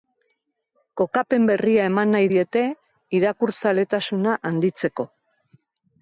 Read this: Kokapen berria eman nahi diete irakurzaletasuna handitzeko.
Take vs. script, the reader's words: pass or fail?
pass